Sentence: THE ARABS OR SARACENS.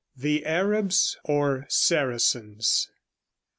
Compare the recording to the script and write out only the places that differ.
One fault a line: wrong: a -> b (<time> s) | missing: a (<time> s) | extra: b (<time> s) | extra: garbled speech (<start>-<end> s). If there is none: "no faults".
no faults